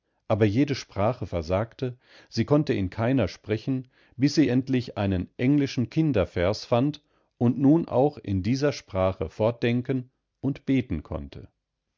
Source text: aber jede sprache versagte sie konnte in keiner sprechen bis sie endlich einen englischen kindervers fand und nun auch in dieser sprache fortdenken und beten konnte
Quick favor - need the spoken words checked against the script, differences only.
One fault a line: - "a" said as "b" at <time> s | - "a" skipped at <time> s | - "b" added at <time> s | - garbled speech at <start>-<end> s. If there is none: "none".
none